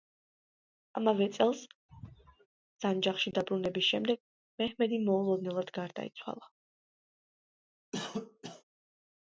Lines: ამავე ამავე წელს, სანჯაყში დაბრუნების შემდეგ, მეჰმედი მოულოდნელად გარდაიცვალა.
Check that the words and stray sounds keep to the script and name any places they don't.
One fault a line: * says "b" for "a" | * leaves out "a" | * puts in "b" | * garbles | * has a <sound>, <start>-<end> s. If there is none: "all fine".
* leaves out "ამავე"
* has a sneeze, 1.9-2.5 s
* has a cough, 7.9-8.6 s